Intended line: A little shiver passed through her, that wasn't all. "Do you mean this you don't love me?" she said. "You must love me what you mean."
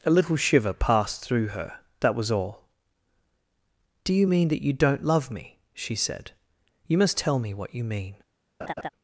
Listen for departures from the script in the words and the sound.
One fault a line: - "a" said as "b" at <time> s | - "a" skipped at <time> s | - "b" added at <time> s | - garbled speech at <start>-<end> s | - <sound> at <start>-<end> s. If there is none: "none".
- "wasn't" said as "was" at 2.1 s
- "this" said as "that" at 4.5 s
- "love" said as "tell" at 7.2 s
- laugh at 8.6-8.9 s